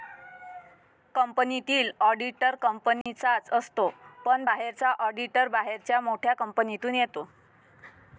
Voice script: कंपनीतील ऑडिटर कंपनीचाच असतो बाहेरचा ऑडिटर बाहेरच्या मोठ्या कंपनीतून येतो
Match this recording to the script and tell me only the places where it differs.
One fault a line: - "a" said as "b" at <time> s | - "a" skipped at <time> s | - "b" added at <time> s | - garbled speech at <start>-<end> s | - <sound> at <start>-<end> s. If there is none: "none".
- dropout at 3.0-3.1 s
- "पण" added at 4.2 s